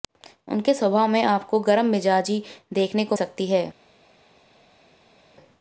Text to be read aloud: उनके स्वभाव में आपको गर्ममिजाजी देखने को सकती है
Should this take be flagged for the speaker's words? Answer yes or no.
no